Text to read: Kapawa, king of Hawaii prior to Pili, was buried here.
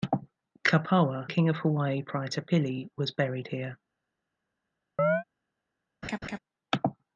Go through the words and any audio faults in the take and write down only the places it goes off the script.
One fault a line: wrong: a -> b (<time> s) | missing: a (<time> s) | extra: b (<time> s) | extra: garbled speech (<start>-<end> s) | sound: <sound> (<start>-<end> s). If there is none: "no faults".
sound: chirp (5.0-5.2 s)
sound: laugh (6.0-6.4 s)